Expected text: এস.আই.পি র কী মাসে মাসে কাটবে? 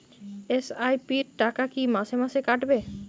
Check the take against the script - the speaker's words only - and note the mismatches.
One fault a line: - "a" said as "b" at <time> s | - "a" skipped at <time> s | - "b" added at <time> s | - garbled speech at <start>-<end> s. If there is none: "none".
- "টাকা" added at 1.4 s